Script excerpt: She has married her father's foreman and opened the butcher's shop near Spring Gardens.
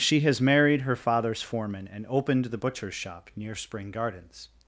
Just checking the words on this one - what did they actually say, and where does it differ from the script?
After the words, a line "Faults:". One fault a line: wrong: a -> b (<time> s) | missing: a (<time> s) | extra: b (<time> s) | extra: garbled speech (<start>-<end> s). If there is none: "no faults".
She has married her father's foreman and opened the butcher's shop near Spring Gardens.
Faults:
no faults